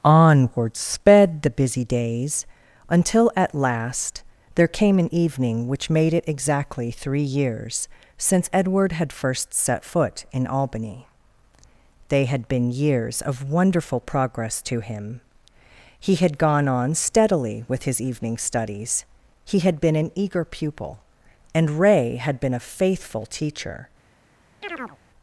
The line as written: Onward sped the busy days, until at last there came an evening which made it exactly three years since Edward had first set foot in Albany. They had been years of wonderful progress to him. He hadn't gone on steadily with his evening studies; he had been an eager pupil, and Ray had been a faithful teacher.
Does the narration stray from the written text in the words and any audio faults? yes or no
yes